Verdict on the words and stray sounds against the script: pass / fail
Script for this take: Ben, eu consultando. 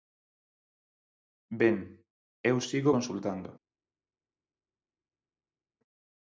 fail